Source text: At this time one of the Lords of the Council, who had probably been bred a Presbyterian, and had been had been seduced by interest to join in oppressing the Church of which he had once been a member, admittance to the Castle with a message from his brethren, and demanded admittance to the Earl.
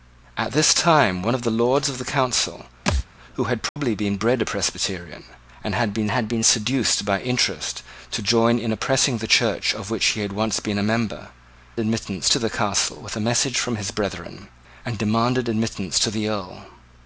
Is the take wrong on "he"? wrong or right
right